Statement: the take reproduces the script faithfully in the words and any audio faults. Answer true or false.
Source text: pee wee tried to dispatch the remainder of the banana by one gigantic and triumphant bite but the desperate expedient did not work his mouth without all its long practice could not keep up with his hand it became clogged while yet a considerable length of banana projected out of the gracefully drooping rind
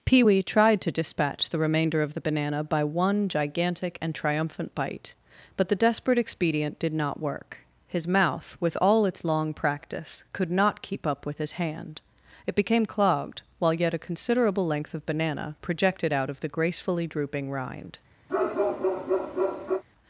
false